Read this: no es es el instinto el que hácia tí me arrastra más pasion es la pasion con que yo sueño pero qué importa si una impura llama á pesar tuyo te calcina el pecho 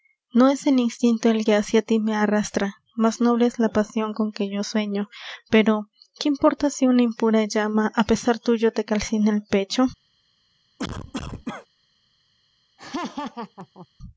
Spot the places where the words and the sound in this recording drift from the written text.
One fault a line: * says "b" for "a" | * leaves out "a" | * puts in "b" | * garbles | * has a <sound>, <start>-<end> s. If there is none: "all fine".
* leaves out "es"
* says "noble" for "pasion"
* has a cough, 10.8-11.7 s
* has a laugh, 12.8-13.9 s